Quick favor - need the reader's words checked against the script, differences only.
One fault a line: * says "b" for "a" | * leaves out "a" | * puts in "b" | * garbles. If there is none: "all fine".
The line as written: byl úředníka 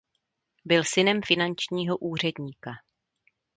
* puts in "synem finančního"